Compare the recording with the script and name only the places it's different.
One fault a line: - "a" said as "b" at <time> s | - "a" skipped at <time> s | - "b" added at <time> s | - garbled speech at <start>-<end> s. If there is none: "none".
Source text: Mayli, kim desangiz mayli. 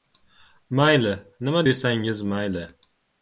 - "kim" said as "nima" at 1.4 s